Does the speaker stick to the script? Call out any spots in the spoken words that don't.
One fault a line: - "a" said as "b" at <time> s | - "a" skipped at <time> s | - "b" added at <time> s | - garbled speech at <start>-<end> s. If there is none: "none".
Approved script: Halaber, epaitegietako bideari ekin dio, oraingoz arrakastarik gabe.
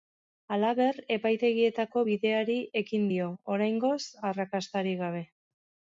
none